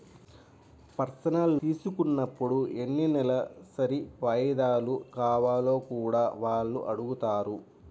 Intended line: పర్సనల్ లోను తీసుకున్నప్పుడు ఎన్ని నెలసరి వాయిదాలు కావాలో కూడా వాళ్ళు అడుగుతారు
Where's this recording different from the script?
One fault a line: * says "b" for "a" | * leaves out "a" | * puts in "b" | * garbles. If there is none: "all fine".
* leaves out "లోను"